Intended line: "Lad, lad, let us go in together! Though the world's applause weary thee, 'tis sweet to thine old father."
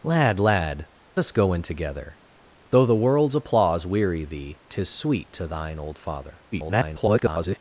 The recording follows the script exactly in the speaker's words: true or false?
false